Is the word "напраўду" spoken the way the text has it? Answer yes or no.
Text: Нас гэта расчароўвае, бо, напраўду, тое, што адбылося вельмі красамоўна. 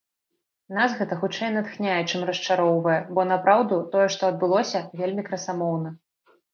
yes